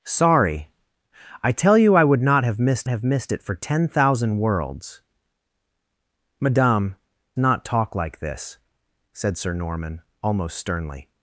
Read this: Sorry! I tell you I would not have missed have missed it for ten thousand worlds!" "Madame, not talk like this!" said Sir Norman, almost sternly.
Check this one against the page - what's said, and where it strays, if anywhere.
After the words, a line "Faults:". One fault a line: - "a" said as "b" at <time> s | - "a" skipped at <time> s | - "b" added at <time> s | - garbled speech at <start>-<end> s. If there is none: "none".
Sorry! I tell you I would not have missed have missed it for ten thousand worlds!" "Madame, not talk like this!" said Sir Norman, almost sternly.
Faults:
none